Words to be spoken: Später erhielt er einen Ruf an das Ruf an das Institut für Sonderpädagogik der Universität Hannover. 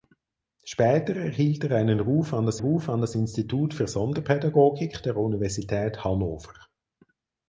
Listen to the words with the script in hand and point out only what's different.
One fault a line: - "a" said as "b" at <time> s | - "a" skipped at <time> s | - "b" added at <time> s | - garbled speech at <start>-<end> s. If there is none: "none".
none